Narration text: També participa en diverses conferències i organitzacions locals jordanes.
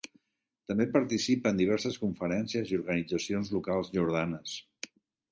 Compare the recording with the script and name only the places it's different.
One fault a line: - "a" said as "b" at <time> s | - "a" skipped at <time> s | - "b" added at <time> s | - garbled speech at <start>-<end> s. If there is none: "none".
none